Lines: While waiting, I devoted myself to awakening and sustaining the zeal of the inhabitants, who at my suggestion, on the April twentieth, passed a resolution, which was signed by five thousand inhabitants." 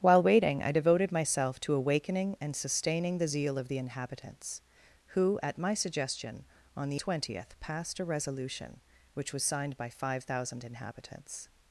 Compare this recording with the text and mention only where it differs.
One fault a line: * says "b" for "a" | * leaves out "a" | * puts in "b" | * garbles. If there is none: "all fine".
* leaves out "April"